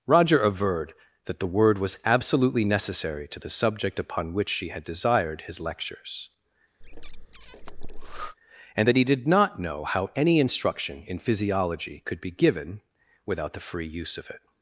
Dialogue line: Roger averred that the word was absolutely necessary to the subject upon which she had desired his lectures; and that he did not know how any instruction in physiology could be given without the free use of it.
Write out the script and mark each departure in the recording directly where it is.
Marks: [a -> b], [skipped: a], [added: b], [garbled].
Roger averred that the word was absolutely necessary to the subject upon which she had desired his lectures; and that he did not know how any instruction in physiology could be given without the free use of it.